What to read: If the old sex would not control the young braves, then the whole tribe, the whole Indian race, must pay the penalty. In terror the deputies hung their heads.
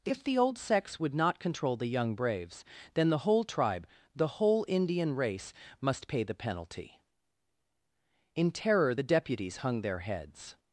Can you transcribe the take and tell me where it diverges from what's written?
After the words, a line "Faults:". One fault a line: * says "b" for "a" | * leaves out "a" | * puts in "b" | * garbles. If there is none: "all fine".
If the old sex would not control the young braves, then the whole tribe, the whole Indian race, must pay the penalty. In terror the deputies hung their heads.
Faults:
all fine